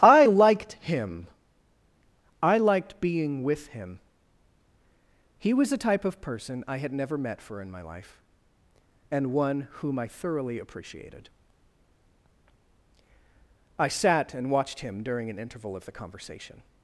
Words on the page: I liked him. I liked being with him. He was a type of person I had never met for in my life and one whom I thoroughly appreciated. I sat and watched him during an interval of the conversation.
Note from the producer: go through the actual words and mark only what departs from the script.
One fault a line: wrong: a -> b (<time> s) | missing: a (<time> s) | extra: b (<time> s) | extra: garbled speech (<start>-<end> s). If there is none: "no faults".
no faults